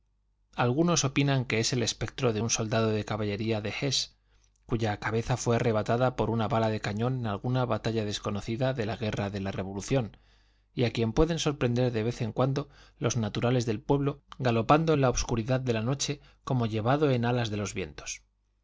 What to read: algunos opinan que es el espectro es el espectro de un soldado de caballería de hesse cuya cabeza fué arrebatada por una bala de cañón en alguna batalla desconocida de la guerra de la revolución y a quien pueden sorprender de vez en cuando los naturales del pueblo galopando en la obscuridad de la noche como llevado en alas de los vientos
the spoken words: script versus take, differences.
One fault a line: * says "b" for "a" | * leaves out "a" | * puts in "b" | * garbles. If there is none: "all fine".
* leaves out "es el espectro"